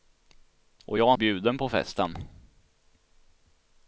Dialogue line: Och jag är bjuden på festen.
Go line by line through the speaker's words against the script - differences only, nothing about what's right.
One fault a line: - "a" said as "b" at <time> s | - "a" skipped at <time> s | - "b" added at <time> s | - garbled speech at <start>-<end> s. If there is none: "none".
none